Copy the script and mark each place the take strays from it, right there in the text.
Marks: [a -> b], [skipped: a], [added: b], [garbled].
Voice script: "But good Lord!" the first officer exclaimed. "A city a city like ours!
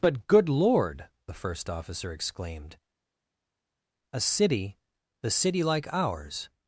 "But good Lord!" the first officer exclaimed. "A city [a -> the] city like ours!